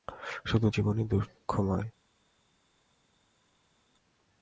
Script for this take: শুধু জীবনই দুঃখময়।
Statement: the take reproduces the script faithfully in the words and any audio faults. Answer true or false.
true